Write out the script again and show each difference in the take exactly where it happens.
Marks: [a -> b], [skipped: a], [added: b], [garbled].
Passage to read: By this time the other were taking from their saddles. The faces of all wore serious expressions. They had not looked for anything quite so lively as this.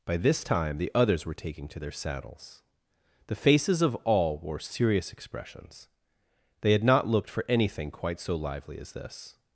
By this time the [other -> others] were taking [from -> to] their saddles. The faces of all wore serious expressions. They had not looked for anything quite so lively as this.